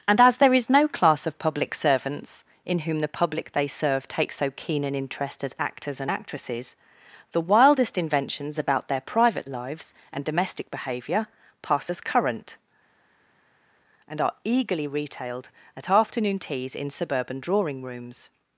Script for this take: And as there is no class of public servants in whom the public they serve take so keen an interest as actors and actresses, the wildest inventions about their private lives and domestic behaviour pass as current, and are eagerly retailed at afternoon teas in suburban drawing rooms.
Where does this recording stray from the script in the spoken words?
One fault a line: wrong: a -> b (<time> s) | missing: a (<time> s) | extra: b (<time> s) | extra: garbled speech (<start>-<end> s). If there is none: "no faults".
no faults